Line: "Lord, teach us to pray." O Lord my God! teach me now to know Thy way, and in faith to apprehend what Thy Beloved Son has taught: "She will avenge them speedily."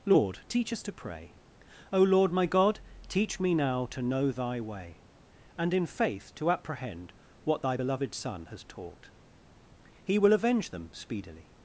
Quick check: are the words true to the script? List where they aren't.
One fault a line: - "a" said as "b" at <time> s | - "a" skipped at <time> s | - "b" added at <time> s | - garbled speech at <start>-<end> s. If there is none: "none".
- "She" said as "He" at 10.0 s